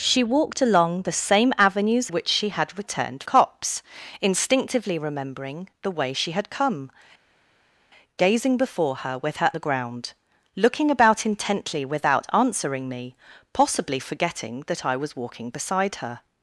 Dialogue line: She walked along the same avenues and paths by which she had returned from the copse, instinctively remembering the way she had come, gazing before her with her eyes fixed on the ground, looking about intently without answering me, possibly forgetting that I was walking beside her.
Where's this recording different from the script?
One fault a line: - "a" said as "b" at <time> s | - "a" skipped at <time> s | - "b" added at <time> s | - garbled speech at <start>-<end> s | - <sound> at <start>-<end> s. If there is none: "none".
- "and paths by" skipped at 2.1 s
- "from the" skipped at 3.2 s
- "eyes fixed on" skipped at 9.5 s